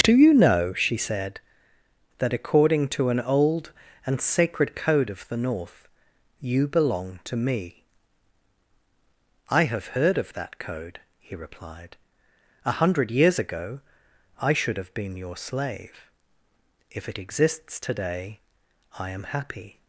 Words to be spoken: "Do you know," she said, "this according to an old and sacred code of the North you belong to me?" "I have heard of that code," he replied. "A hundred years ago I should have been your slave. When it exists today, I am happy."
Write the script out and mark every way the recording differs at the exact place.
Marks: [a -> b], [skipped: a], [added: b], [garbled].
"Do you know," she said, ["this -> that] according to an old and sacred code of the North you belong to me?" "I have heard of that code," he replied. "A hundred years ago I should have been your slave. [When -> If] it exists today, I am happy."